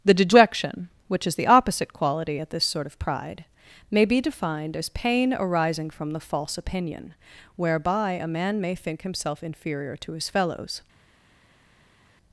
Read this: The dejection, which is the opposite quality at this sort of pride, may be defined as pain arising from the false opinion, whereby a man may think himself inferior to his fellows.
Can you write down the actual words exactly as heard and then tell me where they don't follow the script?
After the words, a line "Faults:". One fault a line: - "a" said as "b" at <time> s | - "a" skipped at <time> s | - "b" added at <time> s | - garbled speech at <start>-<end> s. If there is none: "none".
The dejection, which is the opposite quality at this sort of pride, may be defined as pain arising from the false opinion, whereby a man may think himself inferior to his fellows.
Faults:
none